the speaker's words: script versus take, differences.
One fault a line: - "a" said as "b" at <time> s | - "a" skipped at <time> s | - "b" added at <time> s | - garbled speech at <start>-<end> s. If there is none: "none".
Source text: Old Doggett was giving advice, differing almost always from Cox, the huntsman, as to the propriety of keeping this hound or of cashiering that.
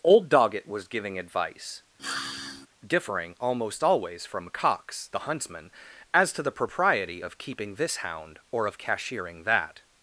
none